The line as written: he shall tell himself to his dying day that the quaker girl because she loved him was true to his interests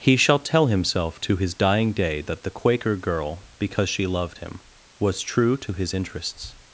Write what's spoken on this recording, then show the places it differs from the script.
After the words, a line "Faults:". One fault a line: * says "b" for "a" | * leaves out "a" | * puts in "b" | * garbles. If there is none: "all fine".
he shall tell himself to his dying day that the quaker girl because she loved him was true to his interests
Faults:
all fine